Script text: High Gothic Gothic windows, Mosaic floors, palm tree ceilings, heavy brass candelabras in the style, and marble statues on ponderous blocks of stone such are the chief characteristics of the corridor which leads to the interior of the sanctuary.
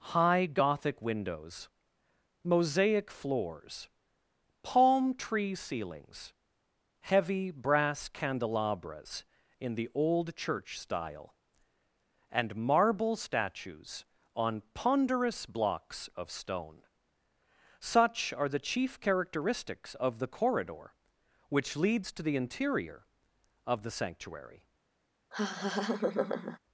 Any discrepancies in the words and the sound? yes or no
yes